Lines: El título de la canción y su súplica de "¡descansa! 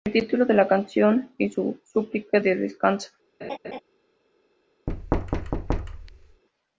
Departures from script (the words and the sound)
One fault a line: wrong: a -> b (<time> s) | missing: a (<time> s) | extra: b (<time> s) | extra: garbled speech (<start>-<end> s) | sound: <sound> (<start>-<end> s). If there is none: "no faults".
sound: laugh (3.4-3.8 s)
sound: thud (4.9-6.4 s)